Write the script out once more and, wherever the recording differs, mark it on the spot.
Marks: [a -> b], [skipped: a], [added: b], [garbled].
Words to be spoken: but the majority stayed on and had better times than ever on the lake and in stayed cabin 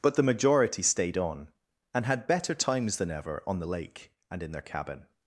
but the majority stayed on and had better times than ever on the lake and in [stayed -> their] cabin